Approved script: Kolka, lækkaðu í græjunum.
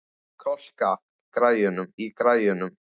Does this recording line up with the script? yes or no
no